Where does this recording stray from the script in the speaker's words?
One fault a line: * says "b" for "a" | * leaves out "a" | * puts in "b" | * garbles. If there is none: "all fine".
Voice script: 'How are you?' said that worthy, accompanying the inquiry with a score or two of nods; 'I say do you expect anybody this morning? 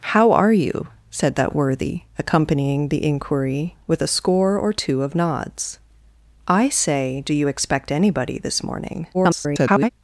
* garbles